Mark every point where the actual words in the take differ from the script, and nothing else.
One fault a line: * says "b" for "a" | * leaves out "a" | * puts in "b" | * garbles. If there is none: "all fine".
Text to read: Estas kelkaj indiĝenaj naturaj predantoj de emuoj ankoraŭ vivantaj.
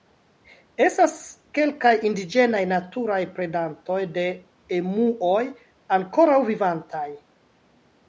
all fine